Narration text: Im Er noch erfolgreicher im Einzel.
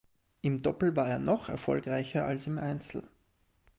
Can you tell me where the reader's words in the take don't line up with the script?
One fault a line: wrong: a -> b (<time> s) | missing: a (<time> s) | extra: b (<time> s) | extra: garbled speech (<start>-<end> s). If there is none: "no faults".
extra: Doppel war (0.6 s)
extra: als (2.2 s)